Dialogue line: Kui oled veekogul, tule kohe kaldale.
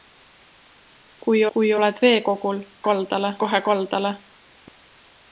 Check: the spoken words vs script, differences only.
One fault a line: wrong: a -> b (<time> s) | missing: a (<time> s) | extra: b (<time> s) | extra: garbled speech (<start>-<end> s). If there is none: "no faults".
extra: kui (1.5 s)
wrong: tule -> kaldale (2.9 s)